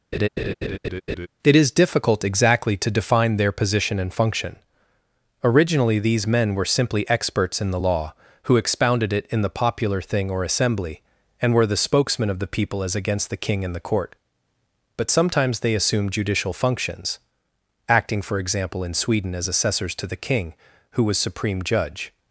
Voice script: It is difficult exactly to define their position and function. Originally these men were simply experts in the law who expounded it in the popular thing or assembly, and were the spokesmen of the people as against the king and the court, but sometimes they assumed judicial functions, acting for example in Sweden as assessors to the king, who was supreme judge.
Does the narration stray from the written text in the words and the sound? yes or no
yes